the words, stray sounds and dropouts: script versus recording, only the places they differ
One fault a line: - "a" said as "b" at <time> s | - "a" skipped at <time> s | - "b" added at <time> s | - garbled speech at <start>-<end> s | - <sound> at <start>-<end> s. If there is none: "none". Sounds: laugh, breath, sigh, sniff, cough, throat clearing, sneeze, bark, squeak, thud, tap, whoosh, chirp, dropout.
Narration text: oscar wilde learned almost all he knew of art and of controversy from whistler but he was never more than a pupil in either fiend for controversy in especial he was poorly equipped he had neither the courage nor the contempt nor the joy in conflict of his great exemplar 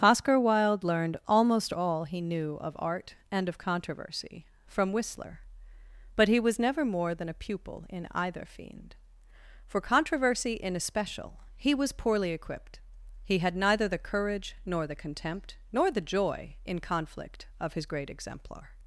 none